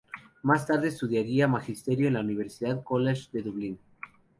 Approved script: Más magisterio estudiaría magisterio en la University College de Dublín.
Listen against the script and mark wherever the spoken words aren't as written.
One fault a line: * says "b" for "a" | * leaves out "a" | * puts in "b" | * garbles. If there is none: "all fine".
* says "tarde" for "magisterio"